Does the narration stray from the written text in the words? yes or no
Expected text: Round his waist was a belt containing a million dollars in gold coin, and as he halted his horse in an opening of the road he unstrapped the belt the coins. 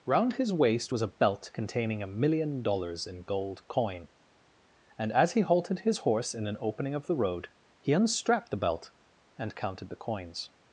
yes